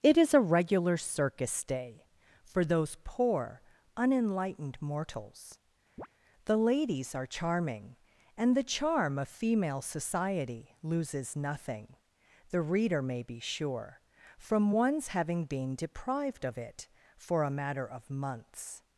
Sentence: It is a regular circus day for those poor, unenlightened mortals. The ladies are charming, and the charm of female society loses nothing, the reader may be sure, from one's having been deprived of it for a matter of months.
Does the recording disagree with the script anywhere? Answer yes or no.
no